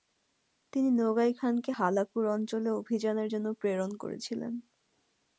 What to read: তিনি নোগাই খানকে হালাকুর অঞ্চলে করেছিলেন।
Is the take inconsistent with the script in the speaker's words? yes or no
yes